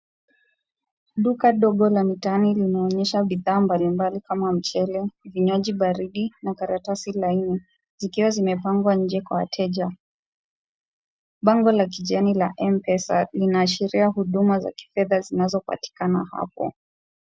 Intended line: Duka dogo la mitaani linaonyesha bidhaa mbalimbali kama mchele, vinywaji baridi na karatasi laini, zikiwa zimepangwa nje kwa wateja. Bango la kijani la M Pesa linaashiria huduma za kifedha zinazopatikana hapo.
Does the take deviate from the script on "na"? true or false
false